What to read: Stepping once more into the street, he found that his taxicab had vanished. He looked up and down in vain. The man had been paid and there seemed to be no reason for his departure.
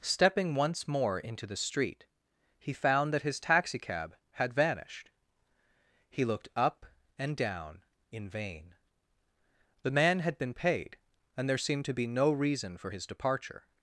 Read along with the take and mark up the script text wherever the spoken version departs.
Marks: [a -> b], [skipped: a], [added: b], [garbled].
Stepping once more into the street, he found that his taxicab had vanished. He looked up and down in vain. The man had been paid and there seemed to be no reason for his departure.